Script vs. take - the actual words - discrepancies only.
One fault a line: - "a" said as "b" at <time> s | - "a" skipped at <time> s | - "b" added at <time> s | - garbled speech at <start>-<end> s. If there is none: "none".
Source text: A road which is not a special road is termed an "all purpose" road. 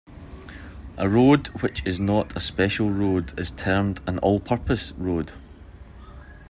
none